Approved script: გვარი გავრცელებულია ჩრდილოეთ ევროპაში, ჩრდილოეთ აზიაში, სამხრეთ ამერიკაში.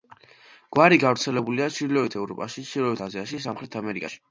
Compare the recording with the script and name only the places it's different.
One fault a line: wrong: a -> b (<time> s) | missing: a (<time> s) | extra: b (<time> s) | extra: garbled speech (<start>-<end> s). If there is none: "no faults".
no faults